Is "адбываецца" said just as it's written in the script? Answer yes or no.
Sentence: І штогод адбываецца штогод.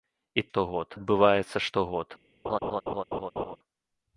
yes